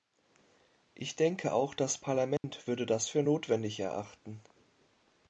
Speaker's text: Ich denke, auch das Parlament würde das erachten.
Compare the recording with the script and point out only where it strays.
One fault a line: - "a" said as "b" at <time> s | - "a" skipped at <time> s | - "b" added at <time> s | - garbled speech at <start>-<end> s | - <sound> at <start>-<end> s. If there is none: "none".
- dropout at 2.4-2.4 s
- "für notwendig" added at 3.1 s